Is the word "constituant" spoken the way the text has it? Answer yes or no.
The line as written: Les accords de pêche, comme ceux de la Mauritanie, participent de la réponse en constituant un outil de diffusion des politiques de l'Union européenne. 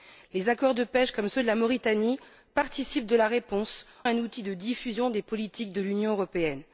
no